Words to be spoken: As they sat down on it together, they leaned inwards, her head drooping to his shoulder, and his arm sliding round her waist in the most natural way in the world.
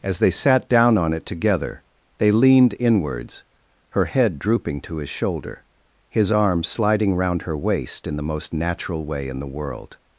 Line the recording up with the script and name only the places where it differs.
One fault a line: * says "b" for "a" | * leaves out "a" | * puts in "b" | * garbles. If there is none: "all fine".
* leaves out "and"